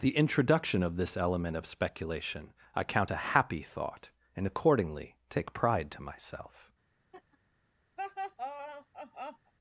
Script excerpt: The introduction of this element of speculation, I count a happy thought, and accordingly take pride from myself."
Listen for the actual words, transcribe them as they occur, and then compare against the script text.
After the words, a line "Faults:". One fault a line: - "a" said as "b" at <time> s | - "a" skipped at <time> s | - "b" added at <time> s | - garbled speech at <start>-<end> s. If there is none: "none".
The introduction of this element of speculation, I count a happy thought, and accordingly take pride to myself."
Faults:
- "from" said as "to" at 5.9 s